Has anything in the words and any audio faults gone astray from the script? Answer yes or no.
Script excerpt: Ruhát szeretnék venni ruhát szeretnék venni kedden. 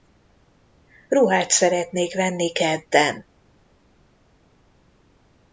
yes